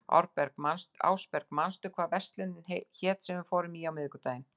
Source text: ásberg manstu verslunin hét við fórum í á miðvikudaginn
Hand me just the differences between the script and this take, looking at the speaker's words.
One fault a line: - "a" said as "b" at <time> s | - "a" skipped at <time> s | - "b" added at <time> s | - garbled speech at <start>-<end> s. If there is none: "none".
- "hvað" added at 2.0 s
- "sem" added at 3.2 s